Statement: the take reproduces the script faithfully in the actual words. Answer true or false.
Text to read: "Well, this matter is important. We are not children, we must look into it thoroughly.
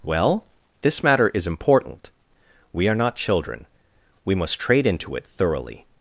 false